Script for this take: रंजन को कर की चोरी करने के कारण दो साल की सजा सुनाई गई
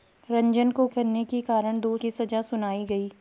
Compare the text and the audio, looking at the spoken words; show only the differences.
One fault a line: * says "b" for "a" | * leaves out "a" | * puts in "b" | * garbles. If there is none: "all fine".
* leaves out "कर की चोरी"
* leaves out "साल"